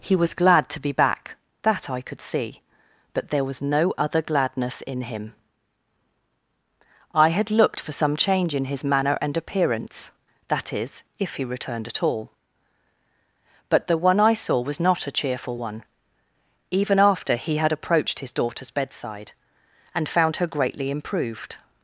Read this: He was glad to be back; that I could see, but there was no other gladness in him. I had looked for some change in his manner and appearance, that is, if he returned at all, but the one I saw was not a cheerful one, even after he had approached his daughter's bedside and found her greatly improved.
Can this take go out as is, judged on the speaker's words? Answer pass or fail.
pass